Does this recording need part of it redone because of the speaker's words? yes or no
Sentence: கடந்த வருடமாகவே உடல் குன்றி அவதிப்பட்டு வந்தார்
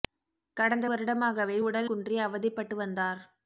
no